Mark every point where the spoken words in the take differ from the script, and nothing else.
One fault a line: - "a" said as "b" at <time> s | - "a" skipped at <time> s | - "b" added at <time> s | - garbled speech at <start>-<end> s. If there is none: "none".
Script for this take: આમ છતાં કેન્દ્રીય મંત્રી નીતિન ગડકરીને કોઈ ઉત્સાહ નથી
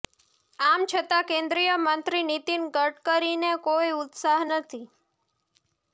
none